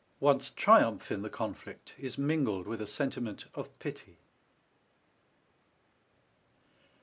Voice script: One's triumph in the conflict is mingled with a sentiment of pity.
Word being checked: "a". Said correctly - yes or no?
yes